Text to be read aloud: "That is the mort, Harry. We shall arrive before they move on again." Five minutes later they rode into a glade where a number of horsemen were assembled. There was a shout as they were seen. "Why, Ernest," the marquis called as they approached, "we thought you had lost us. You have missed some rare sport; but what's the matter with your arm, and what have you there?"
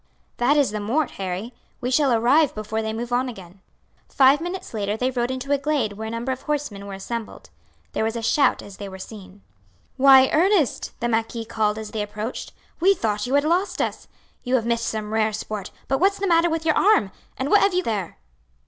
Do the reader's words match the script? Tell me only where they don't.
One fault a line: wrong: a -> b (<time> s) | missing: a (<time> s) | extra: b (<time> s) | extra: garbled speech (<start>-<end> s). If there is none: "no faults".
no faults